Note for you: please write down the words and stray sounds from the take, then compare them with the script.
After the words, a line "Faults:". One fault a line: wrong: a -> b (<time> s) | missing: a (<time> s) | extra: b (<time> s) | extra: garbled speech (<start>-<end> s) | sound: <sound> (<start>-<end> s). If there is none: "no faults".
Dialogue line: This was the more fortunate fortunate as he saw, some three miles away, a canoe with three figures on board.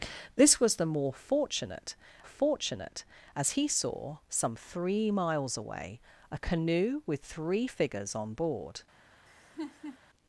This was the more fortunate fortunate as he saw, some three miles away, a canoe with three figures on board.
Faults:
sound: laugh (9.3-10.0 s)